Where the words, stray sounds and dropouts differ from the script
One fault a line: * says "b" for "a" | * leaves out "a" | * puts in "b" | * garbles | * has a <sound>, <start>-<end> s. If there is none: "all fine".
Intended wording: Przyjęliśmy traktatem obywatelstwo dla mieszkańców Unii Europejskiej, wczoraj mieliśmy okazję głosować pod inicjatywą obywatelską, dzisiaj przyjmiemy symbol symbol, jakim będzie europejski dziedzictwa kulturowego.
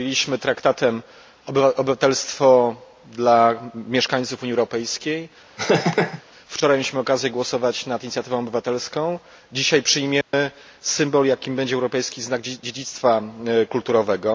* has a laugh, 5.6-6.2 s
* says "nad" for "pod"
* has a dropout, 10.2-10.3 s
* leaves out "symbol"
* puts in "znak"